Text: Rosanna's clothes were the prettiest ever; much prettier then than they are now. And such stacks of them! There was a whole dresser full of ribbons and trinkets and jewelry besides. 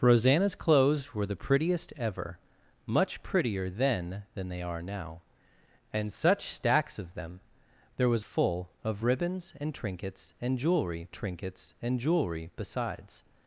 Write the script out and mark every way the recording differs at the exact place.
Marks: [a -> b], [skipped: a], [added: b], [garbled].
Rosanna's clothes were the prettiest ever; much prettier then than they are now. And such stacks of them! There was [skipped: a whole dresser] full of ribbons and trinkets and jewelry [added: trinkets and jewelry] besides.